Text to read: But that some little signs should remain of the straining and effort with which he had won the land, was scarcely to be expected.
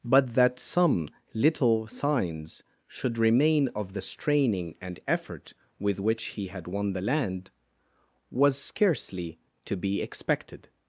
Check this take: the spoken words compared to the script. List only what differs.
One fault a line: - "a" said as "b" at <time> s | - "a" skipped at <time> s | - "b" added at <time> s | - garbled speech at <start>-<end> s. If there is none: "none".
none